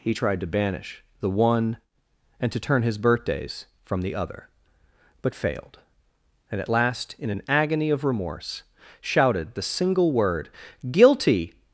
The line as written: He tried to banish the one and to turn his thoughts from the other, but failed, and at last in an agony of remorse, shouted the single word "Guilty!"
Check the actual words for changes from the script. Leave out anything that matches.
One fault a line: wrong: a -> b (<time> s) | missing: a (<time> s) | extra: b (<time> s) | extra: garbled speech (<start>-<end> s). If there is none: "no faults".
wrong: thoughts -> birthdays (3.0 s)